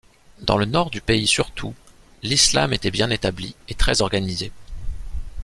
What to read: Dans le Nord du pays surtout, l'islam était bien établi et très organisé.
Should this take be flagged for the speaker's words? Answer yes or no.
no